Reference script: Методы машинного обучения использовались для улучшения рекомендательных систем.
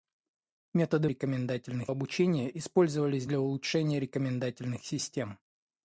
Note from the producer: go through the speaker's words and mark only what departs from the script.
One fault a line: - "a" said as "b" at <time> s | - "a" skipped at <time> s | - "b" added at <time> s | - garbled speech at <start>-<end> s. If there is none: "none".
- "машинного" said as "рекомендательных" at 1.1 s